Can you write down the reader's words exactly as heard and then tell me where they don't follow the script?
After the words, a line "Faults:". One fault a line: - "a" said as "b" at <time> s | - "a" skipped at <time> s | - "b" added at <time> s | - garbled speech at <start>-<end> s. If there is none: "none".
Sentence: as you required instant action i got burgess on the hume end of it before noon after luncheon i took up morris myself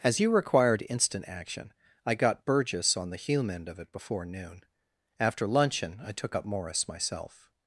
as you required instant action i got burgess on the hume end of it before noon after luncheon i took up morris myself
Faults:
none